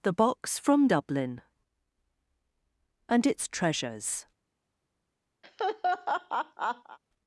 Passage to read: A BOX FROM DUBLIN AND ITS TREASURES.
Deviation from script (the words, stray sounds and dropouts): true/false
true